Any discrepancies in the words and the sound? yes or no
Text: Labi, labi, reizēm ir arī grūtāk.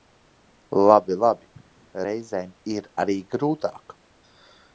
no